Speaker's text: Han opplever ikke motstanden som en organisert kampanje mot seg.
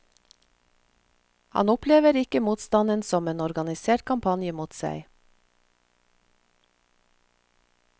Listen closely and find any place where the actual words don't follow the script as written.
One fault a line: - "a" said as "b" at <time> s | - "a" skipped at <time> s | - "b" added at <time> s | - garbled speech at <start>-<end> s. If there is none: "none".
none